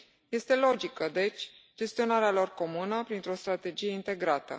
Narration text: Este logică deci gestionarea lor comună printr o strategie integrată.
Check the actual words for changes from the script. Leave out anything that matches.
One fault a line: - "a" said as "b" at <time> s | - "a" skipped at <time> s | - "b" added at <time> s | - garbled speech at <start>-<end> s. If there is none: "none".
none